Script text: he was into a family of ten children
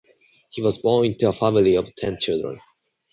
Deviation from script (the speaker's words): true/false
true